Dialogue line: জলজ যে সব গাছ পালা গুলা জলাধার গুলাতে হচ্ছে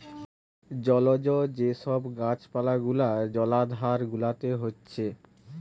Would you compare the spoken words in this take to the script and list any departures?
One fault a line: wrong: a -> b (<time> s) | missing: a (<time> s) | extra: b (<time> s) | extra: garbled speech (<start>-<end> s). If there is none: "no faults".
no faults